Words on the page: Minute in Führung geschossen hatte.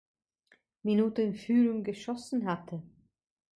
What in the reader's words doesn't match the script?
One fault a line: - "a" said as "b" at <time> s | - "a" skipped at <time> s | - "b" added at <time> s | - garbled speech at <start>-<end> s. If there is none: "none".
none